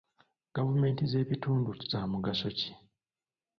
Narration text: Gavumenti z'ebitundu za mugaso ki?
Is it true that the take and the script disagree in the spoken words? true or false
false